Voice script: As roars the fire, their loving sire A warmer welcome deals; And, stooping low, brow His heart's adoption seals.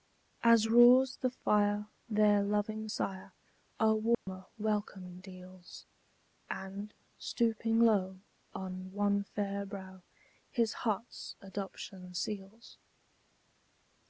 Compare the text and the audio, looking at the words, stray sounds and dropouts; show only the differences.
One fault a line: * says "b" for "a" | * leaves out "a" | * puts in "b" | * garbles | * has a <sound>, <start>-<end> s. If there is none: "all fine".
* has a dropout, 4.1-4.3 s
* puts in "on one fair"